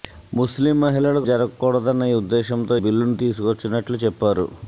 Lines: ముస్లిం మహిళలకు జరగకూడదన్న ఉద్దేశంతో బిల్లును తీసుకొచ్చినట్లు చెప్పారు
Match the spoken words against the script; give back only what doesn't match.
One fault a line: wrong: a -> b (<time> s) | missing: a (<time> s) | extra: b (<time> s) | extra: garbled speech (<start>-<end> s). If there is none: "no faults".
no faults